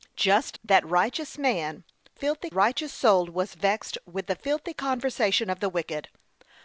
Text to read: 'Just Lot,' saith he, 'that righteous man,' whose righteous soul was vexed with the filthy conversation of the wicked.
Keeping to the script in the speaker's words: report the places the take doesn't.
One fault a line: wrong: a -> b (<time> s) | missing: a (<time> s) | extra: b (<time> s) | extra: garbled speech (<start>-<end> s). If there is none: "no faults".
missing: Lot saith he (0.6 s)
wrong: whose -> filthy (2.1 s)